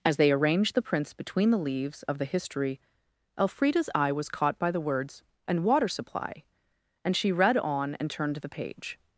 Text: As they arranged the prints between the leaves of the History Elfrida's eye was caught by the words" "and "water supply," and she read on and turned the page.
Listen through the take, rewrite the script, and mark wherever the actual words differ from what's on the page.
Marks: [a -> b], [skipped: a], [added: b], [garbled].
As they arranged the prints between the leaves of the History Elfrida's eye was caught by the words" "and "water supply," and she read on and turned the page.